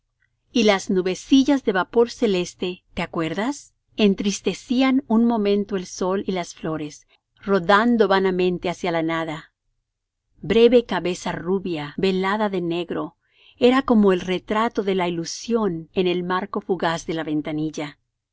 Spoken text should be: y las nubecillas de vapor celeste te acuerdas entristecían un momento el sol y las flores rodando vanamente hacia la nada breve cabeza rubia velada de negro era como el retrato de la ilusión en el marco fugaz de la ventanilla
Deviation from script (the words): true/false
false